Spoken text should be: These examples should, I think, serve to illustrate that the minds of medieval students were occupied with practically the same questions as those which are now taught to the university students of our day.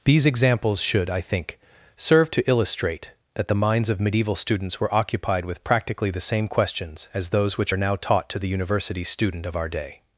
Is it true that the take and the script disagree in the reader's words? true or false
true